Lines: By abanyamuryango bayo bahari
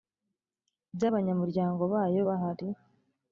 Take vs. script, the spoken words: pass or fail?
pass